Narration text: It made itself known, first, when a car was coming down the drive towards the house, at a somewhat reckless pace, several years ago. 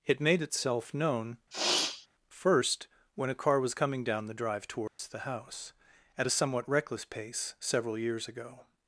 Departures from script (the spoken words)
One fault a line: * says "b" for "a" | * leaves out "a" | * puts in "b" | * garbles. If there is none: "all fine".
all fine